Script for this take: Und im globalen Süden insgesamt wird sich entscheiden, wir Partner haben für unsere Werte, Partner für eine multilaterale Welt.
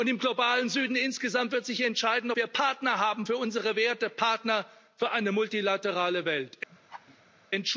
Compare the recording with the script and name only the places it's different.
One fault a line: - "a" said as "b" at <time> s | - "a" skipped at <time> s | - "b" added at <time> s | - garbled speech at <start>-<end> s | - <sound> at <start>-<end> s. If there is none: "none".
- laugh at 6.7-7.5 s